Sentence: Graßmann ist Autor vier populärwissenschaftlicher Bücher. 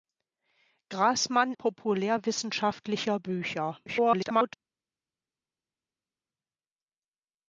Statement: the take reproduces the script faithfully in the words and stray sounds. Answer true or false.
false